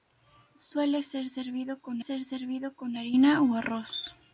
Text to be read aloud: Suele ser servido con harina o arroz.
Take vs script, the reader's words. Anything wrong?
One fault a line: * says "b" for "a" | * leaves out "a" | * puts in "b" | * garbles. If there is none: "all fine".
* puts in "ser servido con"